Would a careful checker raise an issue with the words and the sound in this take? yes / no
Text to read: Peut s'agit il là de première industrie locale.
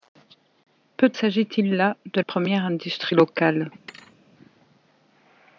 yes